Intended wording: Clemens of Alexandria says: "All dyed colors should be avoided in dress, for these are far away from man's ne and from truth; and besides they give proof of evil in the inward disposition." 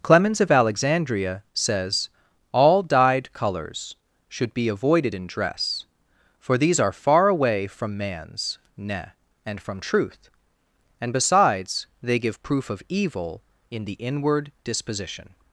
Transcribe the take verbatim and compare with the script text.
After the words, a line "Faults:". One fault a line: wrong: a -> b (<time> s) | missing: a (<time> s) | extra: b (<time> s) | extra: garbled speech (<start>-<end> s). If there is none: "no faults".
Clemens of Alexandria says: "All dyed colors should be avoided in dress, for these are far away from man's ne and from truth; and besides they give proof of evil in the inward disposition."
Faults:
no faults